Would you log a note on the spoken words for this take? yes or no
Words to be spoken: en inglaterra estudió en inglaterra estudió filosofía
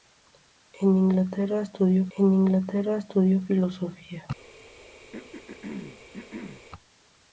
no